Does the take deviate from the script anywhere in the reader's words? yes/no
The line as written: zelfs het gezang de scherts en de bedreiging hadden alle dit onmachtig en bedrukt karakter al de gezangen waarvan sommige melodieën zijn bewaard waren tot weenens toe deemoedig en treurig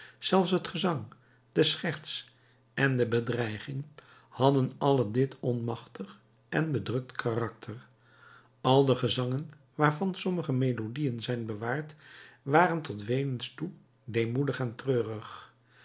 no